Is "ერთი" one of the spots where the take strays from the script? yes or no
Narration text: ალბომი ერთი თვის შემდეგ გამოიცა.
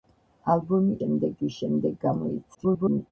yes